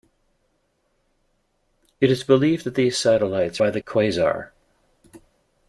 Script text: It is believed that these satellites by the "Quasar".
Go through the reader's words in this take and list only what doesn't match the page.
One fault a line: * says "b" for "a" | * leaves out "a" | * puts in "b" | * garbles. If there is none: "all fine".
all fine